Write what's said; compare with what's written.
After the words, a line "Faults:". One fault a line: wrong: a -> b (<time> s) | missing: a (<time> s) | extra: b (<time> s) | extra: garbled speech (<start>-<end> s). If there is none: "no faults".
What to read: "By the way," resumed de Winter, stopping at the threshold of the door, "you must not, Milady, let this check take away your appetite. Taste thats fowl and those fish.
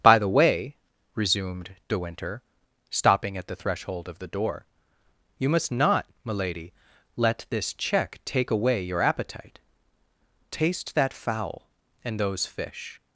"By the way," resumed de Winter, stopping at the threshold of the door, "you must not, Milady, let this check take away your appetite. Taste that fowl and those fish.
Faults:
wrong: thats -> that (10.9 s)